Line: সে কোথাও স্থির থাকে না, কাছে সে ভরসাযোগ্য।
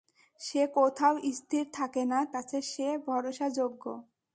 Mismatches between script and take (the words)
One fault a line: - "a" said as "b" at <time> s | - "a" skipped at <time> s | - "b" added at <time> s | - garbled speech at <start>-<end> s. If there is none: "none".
none